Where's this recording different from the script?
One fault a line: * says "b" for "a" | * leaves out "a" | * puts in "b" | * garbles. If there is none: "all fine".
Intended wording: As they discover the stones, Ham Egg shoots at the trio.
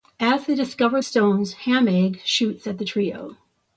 * leaves out "the"